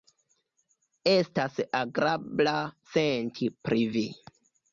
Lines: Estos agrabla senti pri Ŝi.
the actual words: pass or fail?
fail